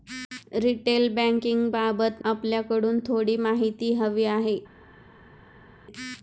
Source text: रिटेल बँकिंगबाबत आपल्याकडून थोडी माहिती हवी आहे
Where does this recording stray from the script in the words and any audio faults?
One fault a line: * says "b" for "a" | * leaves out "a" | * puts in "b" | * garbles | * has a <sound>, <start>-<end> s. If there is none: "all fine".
all fine